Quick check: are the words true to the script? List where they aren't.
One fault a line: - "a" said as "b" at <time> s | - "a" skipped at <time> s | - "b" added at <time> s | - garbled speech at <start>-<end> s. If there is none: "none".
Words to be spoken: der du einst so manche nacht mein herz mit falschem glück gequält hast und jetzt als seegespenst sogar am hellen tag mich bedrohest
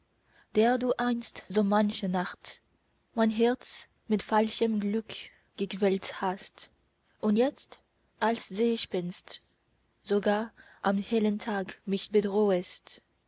none